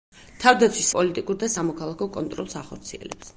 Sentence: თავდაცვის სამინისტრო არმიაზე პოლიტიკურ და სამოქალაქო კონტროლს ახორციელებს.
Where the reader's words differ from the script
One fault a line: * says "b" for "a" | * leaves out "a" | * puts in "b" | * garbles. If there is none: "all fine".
* leaves out "სამინისტრო არმიაზე"